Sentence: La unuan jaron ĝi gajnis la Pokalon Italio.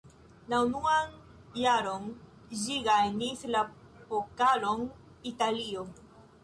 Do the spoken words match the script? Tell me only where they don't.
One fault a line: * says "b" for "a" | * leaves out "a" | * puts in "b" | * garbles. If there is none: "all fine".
all fine